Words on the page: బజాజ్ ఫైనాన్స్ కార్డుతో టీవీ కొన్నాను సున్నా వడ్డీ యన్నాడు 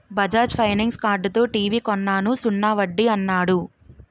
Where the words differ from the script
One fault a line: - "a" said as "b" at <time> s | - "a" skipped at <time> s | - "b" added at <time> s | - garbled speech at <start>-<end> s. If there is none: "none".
none